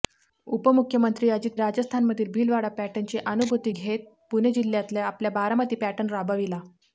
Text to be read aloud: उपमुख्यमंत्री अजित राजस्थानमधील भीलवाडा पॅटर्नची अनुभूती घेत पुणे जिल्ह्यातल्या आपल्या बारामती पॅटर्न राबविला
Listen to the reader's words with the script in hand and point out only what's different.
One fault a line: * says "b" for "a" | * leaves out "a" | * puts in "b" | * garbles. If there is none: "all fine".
all fine